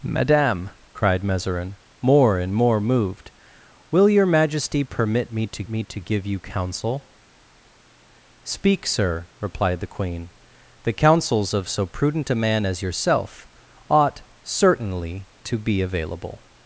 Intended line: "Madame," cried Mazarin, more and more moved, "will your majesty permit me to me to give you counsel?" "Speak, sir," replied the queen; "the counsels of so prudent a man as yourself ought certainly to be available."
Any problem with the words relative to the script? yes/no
no